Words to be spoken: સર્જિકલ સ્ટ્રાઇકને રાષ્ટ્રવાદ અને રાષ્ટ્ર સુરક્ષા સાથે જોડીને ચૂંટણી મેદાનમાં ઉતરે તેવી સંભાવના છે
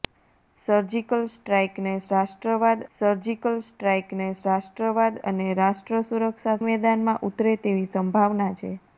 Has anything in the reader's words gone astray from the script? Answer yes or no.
yes